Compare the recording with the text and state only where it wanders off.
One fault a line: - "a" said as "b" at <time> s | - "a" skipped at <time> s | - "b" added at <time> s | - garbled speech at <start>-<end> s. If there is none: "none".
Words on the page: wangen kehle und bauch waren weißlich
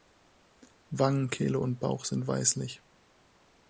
- "waren" said as "sind" at 2.1 s